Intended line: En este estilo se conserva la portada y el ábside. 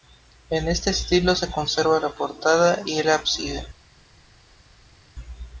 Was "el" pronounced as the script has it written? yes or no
yes